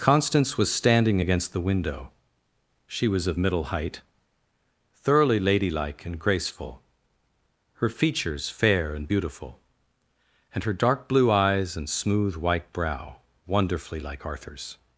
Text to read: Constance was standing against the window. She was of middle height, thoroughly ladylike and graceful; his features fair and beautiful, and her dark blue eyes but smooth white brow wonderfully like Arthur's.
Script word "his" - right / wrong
wrong